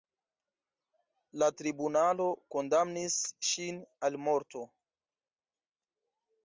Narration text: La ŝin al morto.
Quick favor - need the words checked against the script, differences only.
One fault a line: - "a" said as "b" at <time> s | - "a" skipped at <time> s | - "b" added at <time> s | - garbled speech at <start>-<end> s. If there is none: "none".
- "tribunalo kondamnis" added at 1.6 s